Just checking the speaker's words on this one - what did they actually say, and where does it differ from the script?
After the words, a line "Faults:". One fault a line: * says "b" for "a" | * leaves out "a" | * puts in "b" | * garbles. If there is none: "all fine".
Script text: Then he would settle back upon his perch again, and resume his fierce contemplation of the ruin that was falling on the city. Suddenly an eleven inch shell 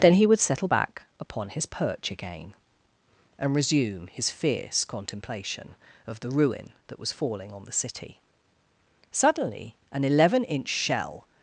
Then he would settle back upon his perch again, and resume his fierce contemplation of the ruin that was falling on the city. Suddenly an eleven inch shell
Faults:
all fine